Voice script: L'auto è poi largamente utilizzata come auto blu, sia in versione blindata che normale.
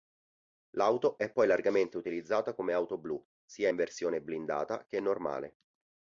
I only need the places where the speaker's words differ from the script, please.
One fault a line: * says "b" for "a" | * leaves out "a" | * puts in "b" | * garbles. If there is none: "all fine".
all fine